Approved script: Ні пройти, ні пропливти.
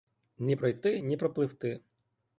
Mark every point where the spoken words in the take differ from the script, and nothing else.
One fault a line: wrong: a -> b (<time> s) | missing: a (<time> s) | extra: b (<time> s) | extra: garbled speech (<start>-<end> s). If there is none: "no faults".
no faults